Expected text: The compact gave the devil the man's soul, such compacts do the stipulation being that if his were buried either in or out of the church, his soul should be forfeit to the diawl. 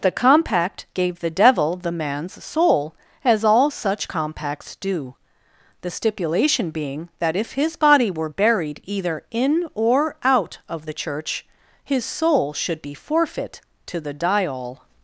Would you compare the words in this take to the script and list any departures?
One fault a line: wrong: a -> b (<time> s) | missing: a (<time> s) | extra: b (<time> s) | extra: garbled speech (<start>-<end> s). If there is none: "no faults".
extra: as all (3.2 s)
extra: body (7.8 s)